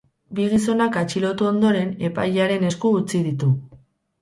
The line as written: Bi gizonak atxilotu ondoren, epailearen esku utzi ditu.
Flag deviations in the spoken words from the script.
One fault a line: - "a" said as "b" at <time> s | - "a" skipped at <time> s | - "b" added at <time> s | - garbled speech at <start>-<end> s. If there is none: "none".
none